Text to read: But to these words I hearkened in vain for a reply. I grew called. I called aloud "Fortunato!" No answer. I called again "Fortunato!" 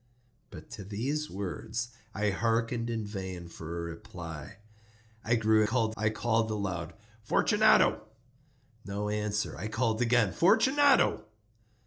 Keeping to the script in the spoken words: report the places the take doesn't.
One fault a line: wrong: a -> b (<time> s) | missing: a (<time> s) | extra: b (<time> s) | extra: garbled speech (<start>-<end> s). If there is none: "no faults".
no faults